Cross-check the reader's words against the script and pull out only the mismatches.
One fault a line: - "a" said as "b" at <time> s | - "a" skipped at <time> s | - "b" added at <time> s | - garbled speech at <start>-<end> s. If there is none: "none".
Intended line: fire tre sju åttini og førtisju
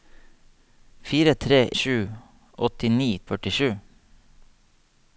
none